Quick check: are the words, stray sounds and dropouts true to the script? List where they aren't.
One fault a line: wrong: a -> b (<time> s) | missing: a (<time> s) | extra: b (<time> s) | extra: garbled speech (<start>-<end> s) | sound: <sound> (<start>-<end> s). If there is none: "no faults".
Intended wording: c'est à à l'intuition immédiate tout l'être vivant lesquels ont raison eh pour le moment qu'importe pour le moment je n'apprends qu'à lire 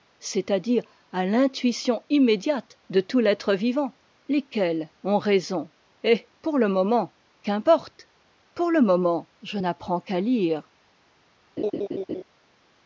extra: dire (0.6 s)
extra: de (2.9 s)
sound: laugh (11.6-12.2 s)